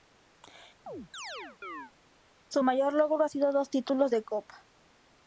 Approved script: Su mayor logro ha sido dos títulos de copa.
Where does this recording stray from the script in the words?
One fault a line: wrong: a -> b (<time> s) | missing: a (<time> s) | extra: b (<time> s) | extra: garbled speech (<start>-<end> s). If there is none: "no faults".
no faults